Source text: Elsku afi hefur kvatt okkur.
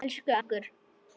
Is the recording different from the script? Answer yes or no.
yes